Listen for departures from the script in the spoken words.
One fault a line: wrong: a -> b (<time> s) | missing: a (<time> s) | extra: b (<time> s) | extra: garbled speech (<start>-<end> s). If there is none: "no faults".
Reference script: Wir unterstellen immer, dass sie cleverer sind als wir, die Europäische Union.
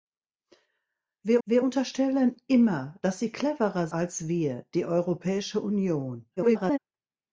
extra: wir (1.4 s)
missing: sind (3.9 s)
extra: garbled speech (6.4-6.8 s)